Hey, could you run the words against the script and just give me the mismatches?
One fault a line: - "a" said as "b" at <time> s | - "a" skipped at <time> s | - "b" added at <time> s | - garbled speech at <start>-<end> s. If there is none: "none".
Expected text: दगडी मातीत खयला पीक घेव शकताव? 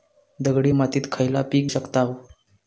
- "घेव" skipped at 1.7 s